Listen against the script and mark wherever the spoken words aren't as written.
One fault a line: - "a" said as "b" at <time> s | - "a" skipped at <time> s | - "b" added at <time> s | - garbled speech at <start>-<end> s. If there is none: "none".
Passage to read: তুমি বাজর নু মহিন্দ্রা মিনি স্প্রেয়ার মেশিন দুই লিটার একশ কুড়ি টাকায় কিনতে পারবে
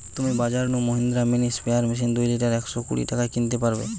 none